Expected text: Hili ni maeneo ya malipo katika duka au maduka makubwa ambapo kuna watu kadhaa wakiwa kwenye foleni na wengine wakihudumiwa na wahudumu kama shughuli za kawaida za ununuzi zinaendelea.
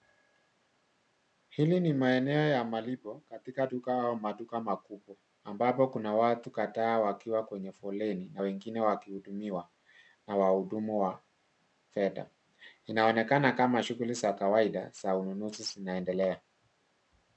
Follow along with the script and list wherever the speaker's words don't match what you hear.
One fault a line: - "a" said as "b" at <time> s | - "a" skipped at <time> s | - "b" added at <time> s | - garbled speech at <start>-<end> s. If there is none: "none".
- "wa fedha Inaonekana" added at 11.0 s